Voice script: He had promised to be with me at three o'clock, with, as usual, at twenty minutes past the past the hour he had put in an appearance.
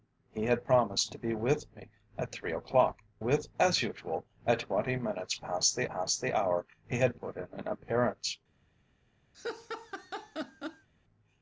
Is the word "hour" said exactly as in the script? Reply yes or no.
yes